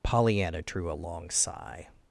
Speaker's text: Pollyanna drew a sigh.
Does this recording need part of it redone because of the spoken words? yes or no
yes